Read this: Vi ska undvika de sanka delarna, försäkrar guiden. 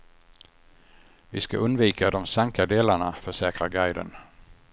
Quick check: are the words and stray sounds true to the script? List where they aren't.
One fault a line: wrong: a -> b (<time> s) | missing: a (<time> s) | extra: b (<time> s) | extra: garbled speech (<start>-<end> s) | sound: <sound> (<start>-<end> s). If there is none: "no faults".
no faults